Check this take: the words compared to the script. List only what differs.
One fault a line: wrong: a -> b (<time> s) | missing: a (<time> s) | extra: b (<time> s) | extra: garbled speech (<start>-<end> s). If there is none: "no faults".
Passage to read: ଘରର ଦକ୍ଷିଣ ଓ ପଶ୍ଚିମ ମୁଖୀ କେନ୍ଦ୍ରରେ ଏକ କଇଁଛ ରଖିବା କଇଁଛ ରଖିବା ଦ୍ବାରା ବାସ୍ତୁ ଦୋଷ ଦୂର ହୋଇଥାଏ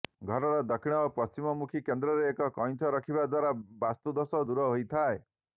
missing: କଇଁଛ ରଖିବା (3.3 s)